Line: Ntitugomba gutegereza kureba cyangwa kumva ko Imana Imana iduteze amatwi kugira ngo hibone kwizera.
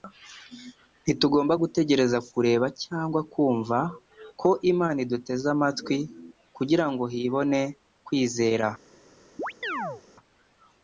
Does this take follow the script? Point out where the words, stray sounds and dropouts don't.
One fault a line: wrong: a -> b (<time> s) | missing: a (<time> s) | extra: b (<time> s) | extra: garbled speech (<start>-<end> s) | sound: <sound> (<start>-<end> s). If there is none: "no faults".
missing: Imana (5.0 s)
sound: chirp (9.4-10.0 s)